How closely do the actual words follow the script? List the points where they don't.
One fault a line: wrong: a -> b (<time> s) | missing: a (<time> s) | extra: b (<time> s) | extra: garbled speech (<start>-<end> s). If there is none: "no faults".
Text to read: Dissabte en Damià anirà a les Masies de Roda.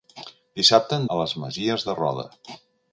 missing: Damià anirà (1.1 s)